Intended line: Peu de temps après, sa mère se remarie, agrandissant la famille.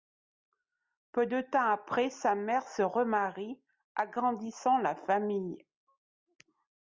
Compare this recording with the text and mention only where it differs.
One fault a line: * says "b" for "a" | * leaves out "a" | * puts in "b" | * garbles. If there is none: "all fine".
all fine